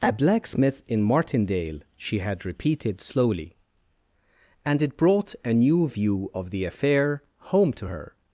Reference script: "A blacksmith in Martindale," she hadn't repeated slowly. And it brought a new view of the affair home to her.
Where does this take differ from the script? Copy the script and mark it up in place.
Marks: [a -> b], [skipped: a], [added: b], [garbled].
"A blacksmith in Martindale," she [hadn't -> had] repeated slowly. And it brought a new view of the affair home to her.